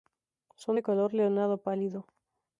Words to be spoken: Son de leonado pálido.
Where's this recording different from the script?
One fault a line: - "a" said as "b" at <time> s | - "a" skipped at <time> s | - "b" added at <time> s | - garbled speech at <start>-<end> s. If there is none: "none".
- "color" added at 0.8 s